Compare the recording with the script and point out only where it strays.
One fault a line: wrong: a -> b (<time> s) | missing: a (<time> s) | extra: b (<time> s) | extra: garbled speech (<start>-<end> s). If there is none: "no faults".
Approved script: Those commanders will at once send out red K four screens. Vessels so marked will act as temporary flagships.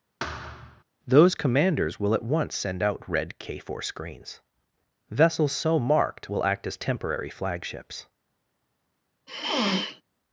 no faults